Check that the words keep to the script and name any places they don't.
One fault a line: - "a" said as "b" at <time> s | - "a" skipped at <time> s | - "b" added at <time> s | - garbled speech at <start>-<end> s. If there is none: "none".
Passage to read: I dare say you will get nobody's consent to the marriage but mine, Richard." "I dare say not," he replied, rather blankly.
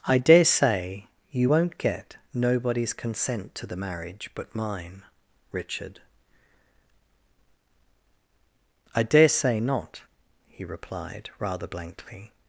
- "will" said as "won't" at 1.5 s